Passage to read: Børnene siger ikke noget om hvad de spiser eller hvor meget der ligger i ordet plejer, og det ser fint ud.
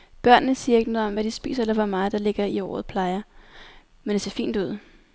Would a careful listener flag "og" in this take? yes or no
yes